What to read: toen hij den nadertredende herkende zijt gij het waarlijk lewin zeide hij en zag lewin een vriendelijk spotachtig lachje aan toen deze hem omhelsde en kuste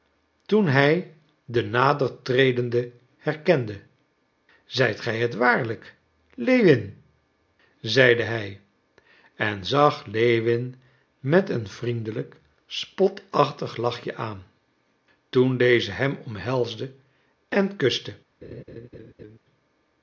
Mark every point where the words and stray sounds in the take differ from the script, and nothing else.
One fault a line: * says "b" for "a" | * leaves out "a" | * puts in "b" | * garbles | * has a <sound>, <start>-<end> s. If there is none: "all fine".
* puts in "met"
* has a laugh, 18.4-19.4 s